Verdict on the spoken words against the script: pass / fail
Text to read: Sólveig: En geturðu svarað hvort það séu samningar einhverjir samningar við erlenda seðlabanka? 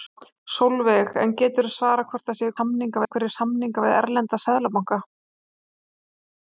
pass